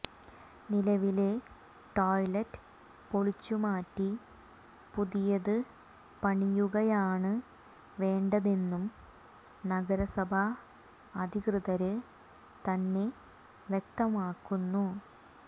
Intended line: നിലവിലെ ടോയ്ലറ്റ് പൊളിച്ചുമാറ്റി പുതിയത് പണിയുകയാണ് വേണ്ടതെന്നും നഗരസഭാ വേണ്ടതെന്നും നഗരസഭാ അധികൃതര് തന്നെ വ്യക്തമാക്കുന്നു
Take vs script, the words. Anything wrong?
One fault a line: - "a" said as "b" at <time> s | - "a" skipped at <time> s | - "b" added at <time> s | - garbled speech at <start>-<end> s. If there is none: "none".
- "വേണ്ടതെന്നും നഗരസഭാ" skipped at 10.4 s